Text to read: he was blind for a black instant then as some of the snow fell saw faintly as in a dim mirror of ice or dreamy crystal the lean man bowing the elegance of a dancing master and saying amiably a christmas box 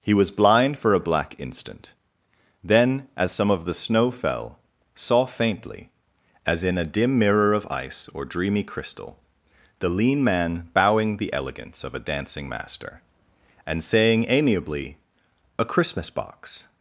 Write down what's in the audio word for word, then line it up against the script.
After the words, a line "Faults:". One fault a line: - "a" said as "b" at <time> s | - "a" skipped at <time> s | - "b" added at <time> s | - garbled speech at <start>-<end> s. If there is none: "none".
he was blind for a black instant then as some of the snow fell saw faintly as in a dim mirror of ice or dreamy crystal the lean man bowing the elegance of a dancing master and saying amiably a christmas box
Faults:
none